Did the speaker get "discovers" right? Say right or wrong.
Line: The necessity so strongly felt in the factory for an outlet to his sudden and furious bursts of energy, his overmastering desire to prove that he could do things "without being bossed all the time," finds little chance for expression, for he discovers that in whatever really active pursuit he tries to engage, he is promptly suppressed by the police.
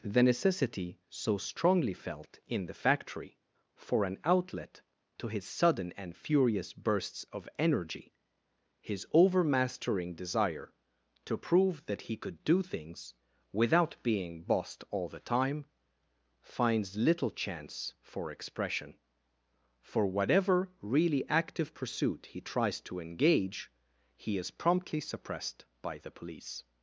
wrong